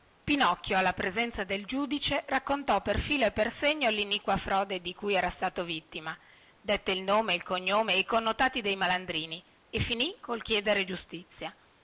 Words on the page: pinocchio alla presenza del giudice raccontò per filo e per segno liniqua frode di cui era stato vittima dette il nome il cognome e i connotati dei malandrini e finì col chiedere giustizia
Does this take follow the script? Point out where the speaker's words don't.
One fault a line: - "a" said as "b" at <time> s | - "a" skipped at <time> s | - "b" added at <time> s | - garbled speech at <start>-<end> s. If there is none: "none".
none